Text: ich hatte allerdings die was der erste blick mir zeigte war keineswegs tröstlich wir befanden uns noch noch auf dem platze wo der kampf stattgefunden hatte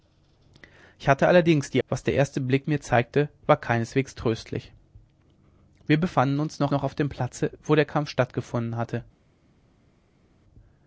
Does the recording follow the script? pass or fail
pass